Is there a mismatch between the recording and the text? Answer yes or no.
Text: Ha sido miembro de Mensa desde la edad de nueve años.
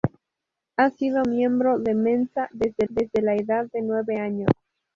yes